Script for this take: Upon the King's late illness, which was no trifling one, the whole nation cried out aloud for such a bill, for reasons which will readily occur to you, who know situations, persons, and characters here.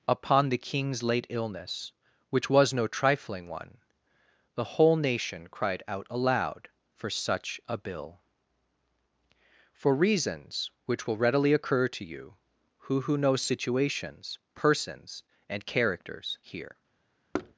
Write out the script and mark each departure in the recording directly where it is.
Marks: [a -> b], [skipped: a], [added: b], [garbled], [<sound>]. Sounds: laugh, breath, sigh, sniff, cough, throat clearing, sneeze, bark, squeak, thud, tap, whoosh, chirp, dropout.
Upon the King's late illness, which was no trifling one, the whole nation cried out aloud for such a bill, for reasons which will readily occur to you, who [added: who] know situations, persons, and characters here. [thud]